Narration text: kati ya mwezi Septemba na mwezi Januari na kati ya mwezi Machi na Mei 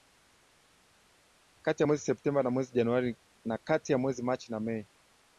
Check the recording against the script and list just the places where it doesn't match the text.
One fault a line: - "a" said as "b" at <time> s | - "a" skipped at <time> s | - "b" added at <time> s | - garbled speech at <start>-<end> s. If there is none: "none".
none